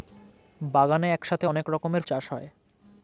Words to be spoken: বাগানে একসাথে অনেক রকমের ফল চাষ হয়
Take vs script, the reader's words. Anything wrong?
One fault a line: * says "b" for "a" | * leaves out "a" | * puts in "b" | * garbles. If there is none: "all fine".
* leaves out "ফল"